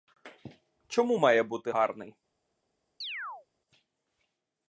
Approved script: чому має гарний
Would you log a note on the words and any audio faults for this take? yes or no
yes